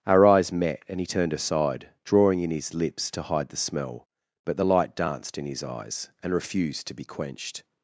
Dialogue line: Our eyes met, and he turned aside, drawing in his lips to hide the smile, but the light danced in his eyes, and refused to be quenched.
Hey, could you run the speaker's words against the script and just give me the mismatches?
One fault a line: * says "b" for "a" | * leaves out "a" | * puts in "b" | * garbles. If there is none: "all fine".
* says "smell" for "smile"